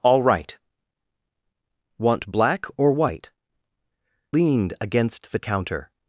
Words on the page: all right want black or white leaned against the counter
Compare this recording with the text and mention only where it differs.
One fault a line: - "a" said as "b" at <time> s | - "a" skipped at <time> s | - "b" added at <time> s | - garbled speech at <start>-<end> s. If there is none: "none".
none